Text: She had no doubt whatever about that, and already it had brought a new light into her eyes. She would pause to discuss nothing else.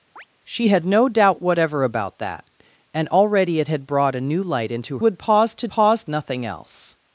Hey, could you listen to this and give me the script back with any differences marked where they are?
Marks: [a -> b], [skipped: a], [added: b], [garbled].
She had no doubt whatever about that, and already it had brought a new light into [skipped: her eyes. She] would pause to [discuss -> pause] nothing else.